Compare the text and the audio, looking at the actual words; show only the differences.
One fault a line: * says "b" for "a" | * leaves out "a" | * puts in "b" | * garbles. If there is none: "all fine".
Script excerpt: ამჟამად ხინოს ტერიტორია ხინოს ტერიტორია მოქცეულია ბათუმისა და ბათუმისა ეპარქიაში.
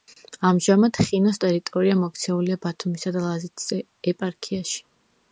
* leaves out "ხინოს ტერიტორია"
* says "ლაზეთის" for "ბათუმისა"